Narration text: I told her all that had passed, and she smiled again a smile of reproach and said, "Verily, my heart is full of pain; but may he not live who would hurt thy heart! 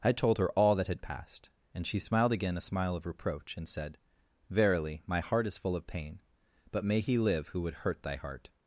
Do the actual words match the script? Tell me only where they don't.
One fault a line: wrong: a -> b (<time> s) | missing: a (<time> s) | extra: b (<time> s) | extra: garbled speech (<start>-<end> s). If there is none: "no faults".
missing: not (7.2 s)